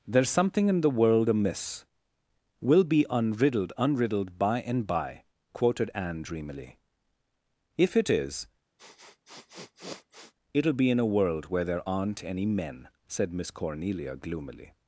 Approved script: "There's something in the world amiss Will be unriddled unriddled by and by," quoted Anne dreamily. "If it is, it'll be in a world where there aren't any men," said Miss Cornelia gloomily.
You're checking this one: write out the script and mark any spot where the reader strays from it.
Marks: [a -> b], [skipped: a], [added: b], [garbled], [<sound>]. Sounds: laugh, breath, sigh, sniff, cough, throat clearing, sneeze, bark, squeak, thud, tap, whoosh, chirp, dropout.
"There's something in the world amiss Will be unriddled unriddled by and by," quoted Anne dreamily. "If it is, [sniff] it'll be in a world where there aren't any men," said Miss Cornelia gloomily.